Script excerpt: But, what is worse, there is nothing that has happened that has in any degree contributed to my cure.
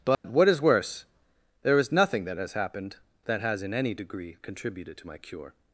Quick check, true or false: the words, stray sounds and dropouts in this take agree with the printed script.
false